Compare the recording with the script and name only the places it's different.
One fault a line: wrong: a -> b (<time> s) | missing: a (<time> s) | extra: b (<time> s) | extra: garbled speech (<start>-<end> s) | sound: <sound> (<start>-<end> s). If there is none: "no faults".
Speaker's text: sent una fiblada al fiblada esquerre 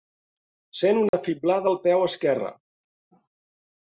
sound: dropout (1.1-1.1 s)
wrong: fiblada -> peu (1.9 s)